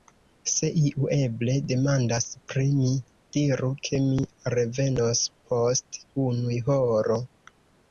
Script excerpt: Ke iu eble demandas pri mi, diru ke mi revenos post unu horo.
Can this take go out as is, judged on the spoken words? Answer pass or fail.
fail